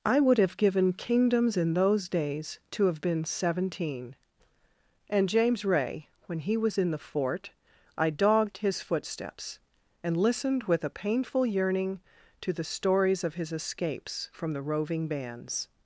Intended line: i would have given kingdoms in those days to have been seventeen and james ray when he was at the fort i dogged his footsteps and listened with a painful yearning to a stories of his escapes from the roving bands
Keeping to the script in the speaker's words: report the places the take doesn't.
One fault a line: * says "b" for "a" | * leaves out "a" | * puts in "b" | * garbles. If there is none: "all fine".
* says "in" for "at"
* says "the" for "a"